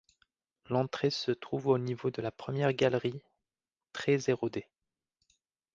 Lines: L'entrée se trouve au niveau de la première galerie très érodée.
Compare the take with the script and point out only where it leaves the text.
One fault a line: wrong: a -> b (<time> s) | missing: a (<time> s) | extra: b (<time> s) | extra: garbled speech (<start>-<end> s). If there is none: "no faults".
no faults